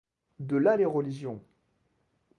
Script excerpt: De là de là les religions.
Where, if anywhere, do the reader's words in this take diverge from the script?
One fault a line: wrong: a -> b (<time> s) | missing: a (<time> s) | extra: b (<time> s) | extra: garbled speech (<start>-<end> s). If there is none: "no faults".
missing: de là (0.8 s)